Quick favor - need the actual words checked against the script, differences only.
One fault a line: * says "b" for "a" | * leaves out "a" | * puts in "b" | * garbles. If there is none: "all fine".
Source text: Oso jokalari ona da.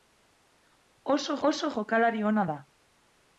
* puts in "oso"